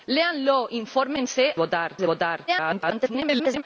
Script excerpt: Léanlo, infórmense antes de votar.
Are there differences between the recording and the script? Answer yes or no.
yes